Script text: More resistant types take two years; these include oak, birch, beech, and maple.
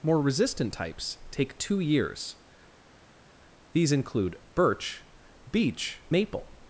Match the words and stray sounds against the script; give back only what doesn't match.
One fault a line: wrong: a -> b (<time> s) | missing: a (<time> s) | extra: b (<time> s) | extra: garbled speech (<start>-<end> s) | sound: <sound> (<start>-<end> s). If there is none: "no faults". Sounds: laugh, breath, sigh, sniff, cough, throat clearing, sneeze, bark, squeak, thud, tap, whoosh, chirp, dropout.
missing: oak (4.4 s)
missing: and (6.0 s)